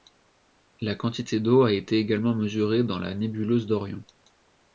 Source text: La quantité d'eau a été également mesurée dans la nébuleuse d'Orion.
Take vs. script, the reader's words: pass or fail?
pass